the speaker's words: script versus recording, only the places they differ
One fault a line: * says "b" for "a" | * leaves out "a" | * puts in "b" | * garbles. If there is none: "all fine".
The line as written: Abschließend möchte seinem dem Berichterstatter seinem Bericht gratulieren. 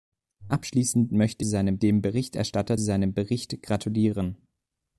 all fine